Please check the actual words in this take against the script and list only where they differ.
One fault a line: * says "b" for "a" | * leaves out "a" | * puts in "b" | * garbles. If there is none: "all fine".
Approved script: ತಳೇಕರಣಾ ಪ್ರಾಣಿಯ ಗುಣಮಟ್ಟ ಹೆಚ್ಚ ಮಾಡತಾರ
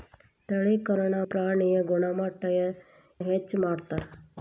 all fine